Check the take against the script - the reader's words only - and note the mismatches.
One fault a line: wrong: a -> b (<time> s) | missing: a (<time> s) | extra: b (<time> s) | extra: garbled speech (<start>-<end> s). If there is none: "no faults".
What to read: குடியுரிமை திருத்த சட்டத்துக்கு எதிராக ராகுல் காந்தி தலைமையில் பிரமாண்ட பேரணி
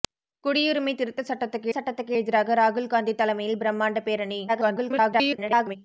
extra: சட்டத்துக்கு (1.7 s)
extra: garbled speech (4.5-5.8 s)